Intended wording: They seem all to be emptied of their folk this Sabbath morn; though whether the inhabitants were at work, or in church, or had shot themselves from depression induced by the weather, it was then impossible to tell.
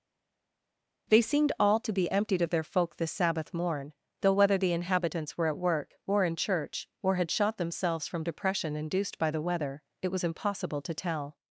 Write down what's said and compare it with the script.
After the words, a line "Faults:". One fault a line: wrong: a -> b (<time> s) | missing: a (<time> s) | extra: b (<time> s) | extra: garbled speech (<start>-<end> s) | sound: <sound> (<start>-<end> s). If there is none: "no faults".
They seemed all to be emptied of their folk this Sabbath morn; though whether the inhabitants were at work, or in church, or had shot themselves from depression induced by the weather, it was impossible to tell.
Faults:
wrong: seem -> seemed (1.2 s)
missing: then (10.2 s)